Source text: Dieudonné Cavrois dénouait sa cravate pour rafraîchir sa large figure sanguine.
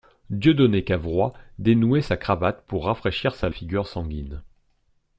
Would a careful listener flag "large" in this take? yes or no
yes